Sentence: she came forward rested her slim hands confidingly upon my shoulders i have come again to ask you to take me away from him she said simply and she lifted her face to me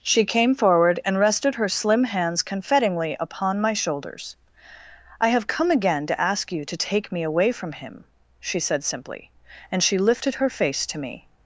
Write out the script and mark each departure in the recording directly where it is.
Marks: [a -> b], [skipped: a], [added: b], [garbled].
she came forward [added: and] rested her slim hands confidingly upon my shoulders i have come again to ask you to take me away from him she said simply and she lifted her face to me